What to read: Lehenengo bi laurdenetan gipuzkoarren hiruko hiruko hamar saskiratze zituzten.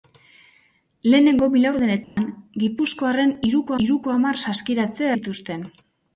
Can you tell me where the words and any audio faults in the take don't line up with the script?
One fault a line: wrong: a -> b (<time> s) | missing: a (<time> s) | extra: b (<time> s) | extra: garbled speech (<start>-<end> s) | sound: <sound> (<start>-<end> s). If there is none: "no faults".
sound: dropout (2.0-2.2 s)